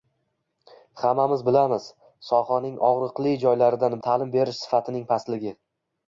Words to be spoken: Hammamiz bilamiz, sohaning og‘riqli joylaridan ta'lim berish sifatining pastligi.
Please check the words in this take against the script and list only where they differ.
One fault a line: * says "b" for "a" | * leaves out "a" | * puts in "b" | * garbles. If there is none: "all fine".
all fine